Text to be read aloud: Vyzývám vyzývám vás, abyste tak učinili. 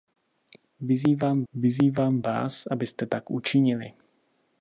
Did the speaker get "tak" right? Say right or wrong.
right